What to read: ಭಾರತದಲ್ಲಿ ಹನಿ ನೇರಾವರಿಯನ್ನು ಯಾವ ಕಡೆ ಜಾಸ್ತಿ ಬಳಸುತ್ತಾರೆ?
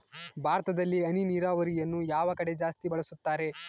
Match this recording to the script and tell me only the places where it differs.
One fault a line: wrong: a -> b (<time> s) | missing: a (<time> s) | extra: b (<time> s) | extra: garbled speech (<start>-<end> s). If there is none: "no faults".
no faults